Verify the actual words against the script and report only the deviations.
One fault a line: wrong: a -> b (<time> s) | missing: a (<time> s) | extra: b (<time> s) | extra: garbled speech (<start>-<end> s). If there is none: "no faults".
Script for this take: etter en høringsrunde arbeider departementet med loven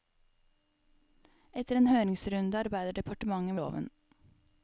missing: med (3.5 s)